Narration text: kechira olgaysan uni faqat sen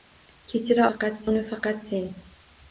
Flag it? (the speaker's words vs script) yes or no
yes